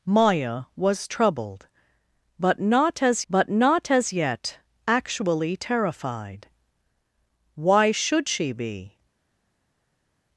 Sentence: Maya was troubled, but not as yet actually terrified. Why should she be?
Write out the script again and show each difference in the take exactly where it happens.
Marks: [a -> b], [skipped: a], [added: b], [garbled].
Maya was troubled, but not as [added: but not as] yet actually terrified. Why should she be?